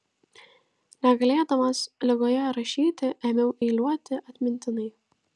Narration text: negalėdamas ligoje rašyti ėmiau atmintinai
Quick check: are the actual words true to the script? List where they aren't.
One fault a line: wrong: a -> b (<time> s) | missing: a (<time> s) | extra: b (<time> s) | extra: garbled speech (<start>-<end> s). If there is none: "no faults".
extra: eiliuoti (3.7 s)